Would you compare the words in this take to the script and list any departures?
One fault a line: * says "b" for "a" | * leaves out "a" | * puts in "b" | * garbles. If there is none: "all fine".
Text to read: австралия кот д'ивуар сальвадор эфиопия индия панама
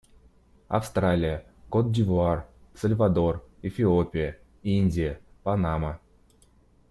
all fine